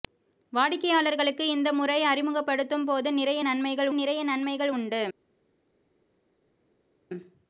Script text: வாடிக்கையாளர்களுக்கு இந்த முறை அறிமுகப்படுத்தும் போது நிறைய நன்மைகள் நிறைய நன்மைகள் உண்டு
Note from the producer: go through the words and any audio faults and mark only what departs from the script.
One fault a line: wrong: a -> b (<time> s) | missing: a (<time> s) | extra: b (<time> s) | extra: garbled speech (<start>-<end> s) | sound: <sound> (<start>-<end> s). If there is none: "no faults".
no faults